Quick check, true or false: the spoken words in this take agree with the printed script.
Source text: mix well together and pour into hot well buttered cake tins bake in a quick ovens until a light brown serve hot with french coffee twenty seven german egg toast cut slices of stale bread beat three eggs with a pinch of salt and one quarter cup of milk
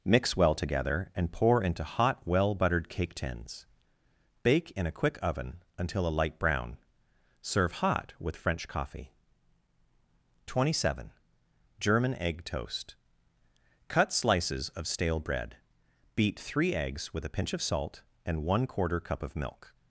false